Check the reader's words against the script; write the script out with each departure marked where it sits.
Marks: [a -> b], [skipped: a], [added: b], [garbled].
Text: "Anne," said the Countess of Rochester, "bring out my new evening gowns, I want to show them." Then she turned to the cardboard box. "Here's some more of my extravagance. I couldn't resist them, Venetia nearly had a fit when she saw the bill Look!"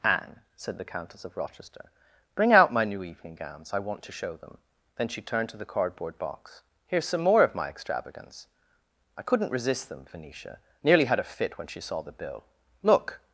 "Anne," said the Countess of Rochester, "bring out my new evening gowns, I want to show them." Then she turned to the cardboard box. "Here's some more of my extravagance. I couldn't resist them, Venetia nearly had a fit when she saw the bill Look!"